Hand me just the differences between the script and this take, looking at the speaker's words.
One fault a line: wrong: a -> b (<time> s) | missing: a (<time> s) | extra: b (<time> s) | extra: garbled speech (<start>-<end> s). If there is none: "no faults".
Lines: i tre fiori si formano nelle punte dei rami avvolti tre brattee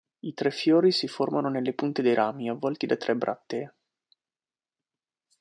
extra: da (2.9 s)